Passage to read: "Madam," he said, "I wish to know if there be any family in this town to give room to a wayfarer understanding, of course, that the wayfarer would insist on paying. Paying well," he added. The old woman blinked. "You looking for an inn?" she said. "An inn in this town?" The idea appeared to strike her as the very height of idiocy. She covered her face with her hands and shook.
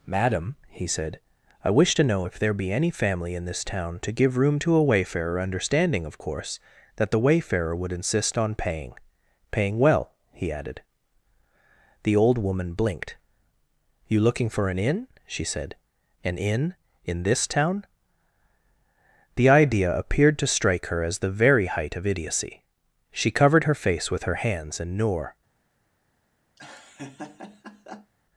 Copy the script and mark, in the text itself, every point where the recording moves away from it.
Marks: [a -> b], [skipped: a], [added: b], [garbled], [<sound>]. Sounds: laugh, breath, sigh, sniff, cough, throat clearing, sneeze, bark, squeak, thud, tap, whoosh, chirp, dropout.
"Madam," he said, "I wish to know if there be any family in this town to give room to a wayfarer understanding, of course, that the wayfarer would insist on paying. Paying well," he added. The old woman blinked. "You looking for an inn?" she said. "An inn in this town?" The idea appeared to strike her as the very height of idiocy. She covered her face with her hands and [shook. -> noor] [laugh]